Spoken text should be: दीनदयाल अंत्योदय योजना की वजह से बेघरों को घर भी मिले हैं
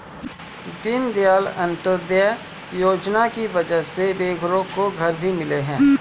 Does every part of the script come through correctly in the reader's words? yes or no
yes